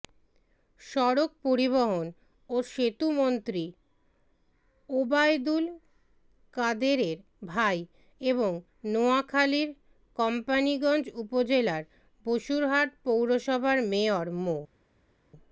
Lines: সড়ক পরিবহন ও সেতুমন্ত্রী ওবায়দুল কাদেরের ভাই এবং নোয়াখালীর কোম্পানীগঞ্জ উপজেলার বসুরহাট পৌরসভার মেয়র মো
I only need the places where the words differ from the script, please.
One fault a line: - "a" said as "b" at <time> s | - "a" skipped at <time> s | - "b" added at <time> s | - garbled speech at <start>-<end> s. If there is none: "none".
none